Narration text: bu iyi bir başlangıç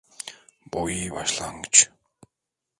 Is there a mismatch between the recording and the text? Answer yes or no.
yes